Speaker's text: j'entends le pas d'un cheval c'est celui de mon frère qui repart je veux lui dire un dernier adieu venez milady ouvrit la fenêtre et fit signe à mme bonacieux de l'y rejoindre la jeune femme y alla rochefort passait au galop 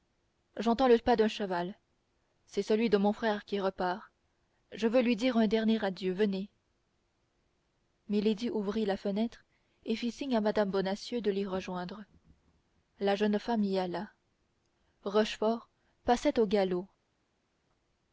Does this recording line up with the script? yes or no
yes